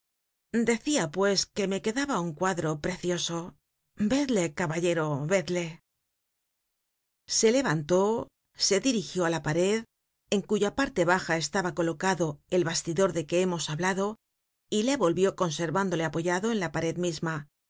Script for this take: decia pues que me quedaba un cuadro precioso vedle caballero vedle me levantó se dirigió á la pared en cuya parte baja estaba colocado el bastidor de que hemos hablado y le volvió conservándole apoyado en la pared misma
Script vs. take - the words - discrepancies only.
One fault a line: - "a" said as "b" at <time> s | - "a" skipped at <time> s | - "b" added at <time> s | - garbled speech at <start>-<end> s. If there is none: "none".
- "me" said as "se" at 7.4 s